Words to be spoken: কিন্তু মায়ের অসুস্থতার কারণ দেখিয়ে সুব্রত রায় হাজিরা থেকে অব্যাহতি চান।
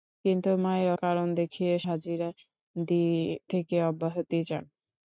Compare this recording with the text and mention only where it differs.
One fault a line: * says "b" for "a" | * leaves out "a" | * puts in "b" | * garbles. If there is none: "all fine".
* leaves out "অসুস্থতার"
* leaves out "সুব্রত রায়"